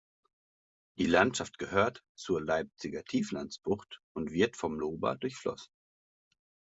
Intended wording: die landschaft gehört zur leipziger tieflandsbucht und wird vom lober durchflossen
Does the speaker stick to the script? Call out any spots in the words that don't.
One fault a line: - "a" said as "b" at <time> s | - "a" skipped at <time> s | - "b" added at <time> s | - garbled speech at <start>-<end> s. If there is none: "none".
none